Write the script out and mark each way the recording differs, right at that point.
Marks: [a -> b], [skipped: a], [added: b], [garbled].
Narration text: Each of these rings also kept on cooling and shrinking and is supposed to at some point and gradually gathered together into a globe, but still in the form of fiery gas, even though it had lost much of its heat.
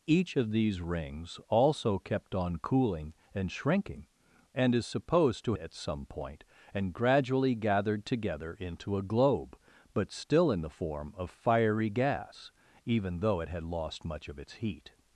Each of these rings also kept on cooling and shrinking and is supposed to at some point and gradually gathered together into a globe, but still in the form of fiery gas, even though it had lost much of its heat.